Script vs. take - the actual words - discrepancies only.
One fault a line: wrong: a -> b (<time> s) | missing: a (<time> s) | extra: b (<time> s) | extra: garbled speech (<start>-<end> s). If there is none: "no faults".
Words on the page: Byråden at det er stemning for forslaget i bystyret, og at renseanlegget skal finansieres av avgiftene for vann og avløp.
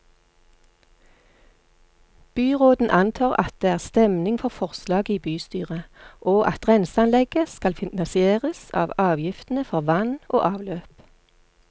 extra: antar (2.9 s)